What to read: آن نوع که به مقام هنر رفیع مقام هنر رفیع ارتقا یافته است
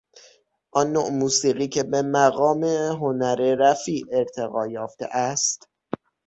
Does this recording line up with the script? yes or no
no